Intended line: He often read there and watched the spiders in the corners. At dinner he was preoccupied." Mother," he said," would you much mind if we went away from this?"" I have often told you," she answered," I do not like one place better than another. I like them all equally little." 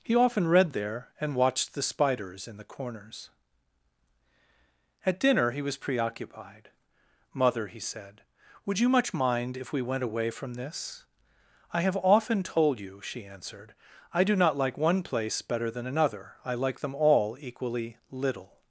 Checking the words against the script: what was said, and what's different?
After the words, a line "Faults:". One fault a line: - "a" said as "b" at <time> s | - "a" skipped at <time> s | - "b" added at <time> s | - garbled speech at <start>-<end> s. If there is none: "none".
He often read there and watched the spiders in the corners. At dinner he was preoccupied." Mother," he said," would you much mind if we went away from this?"" I have often told you," she answered," I do not like one place better than another. I like them all equally little."
Faults:
none